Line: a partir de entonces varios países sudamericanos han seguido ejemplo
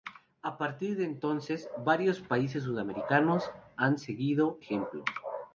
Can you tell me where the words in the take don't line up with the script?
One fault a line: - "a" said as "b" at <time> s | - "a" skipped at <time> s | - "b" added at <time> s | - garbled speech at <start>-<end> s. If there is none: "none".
none